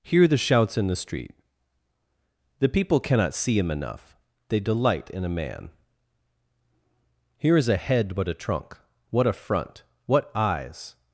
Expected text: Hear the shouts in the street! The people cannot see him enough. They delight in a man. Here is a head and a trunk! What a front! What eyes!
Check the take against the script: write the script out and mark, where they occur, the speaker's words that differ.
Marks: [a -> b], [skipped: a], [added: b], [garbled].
Hear the shouts in the street! The people cannot see him enough. They delight in a man. Here is a head [and -> but] a trunk! What a front! What eyes!